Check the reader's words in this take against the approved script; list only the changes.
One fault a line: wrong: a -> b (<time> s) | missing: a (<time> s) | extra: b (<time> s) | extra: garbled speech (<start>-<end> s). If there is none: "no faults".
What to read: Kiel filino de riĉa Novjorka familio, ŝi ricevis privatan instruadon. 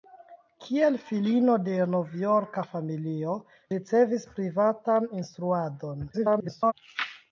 missing: riĉa (1.7 s)
missing: ŝi (3.3 s)
extra: garbled speech (6.1-6.7 s)